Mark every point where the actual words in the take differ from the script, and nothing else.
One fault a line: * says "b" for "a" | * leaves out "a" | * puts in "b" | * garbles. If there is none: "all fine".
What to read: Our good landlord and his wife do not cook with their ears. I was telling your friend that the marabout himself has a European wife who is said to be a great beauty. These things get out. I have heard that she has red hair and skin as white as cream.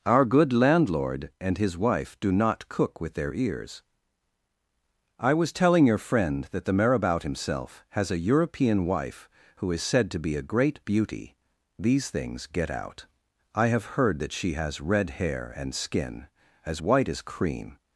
all fine